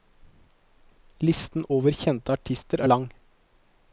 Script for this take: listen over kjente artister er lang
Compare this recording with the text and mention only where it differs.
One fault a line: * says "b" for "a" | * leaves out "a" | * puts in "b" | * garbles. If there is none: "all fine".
all fine